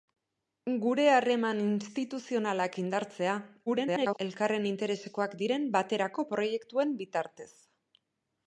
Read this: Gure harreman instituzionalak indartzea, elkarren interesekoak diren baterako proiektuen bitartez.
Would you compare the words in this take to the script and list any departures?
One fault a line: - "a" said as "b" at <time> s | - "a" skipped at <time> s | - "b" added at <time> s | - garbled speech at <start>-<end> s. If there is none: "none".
- garbled speech at 3.7-4.2 s